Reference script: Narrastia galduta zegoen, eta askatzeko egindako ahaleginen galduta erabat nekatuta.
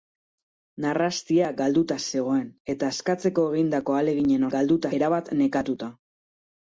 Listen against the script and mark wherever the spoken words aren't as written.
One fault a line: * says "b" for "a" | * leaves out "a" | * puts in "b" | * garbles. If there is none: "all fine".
all fine